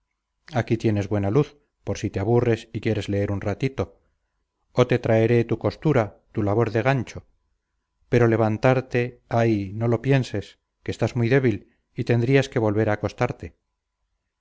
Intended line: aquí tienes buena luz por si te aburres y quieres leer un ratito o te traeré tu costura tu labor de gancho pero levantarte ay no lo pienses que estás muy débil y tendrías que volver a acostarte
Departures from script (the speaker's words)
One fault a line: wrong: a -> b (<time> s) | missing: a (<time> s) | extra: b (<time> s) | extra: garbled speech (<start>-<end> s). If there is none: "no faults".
no faults